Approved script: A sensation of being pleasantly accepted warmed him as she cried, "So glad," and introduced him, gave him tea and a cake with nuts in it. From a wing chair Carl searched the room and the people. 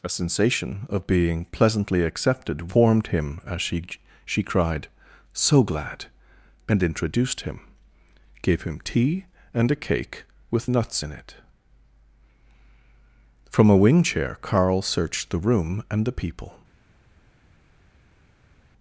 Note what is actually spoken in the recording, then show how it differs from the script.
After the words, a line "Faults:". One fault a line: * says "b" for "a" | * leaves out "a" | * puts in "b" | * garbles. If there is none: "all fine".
A sensation of being pleasantly accepted warmed him as she she cried, "So glad," and introduced him, gave him tea and a cake with nuts in it. From a wing chair Carl searched the room and the people.
Faults:
* puts in "she"